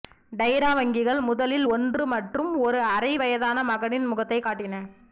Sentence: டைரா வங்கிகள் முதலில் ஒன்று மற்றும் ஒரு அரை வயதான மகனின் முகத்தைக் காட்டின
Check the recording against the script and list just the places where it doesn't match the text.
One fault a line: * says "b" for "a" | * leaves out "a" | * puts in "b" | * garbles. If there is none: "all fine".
all fine